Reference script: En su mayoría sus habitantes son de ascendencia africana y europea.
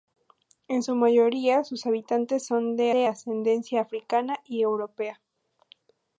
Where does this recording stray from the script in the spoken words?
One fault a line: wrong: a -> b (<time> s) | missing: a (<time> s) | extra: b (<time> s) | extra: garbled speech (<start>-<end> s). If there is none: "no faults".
extra: de (2.9 s)